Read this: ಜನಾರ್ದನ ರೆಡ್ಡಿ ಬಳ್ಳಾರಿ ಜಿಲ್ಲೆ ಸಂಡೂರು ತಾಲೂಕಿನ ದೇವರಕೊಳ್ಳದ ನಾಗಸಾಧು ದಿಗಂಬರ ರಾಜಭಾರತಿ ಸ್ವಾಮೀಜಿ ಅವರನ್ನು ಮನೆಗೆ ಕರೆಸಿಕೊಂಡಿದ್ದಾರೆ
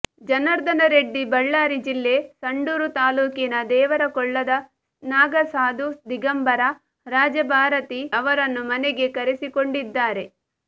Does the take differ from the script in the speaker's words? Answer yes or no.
yes